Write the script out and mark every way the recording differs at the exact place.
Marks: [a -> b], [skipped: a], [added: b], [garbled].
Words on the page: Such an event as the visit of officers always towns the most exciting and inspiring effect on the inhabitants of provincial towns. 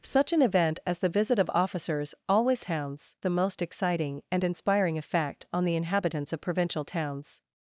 Such an event as the visit of officers always towns the most exciting and inspiring effect on the inhabitants of provincial towns.